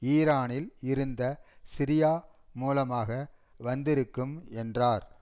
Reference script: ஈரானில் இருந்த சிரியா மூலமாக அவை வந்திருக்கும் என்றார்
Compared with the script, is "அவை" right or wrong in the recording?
wrong